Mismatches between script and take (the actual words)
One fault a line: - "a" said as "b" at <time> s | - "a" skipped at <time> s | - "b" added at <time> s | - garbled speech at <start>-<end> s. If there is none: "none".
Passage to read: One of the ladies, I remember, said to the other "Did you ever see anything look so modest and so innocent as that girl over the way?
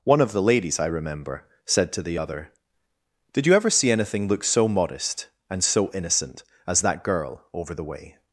none